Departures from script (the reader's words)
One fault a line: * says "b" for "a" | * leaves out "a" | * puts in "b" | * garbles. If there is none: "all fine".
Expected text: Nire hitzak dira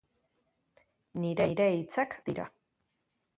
all fine